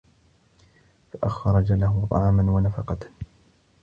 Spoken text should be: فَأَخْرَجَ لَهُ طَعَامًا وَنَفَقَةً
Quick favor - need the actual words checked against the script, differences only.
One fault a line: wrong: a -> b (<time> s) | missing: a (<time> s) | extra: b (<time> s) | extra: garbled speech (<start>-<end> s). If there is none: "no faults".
no faults